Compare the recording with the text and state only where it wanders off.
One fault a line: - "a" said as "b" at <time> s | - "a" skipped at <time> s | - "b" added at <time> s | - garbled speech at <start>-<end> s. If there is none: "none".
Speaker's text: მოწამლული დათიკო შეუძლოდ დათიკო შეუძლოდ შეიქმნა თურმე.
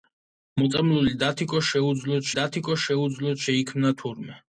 none